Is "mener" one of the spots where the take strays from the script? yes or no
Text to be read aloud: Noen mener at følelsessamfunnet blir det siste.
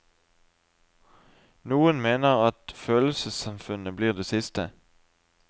no